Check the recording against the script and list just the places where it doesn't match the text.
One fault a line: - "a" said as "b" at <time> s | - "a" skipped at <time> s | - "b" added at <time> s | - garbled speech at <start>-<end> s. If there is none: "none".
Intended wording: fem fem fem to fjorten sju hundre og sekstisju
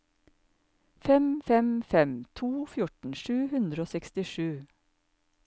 none